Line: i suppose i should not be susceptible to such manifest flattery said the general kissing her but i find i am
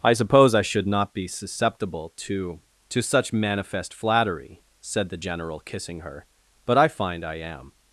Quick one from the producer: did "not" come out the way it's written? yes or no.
yes